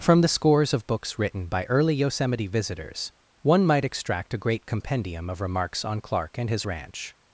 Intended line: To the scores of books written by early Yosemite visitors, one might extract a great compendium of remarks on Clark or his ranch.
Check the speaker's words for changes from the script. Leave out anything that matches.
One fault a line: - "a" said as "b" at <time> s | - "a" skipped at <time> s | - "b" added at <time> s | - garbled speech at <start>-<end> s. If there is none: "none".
- "To" said as "From" at 0.0 s
- "or" said as "and" at 6.4 s